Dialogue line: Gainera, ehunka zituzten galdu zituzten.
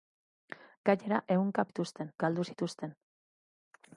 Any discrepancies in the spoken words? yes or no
no